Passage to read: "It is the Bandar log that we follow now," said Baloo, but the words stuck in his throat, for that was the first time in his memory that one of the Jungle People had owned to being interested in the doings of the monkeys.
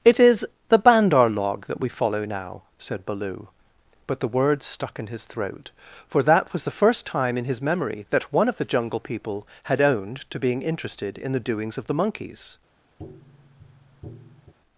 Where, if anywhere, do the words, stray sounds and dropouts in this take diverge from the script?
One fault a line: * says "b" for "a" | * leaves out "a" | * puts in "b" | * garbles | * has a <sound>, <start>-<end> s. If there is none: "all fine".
* has a tap, 13.0-14.5 s